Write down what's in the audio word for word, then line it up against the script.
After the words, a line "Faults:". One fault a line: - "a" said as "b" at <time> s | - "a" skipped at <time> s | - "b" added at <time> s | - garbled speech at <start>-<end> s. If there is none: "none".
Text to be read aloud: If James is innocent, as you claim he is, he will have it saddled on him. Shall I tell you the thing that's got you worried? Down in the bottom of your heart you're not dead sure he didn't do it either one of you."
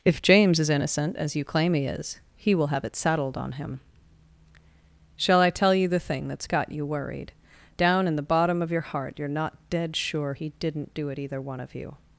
If James is innocent, as you claim he is, he will have it saddled on him. Shall I tell you the thing that's got you worried? Down in the bottom of your heart you're not dead sure he didn't do it either one of you."
Faults:
none